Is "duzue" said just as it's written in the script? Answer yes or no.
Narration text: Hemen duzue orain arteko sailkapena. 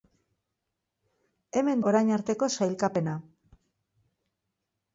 no